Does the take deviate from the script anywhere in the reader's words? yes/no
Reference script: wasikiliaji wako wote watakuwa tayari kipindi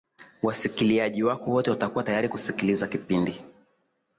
yes